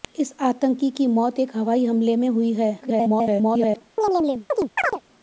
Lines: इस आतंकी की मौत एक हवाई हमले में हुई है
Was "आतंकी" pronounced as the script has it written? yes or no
yes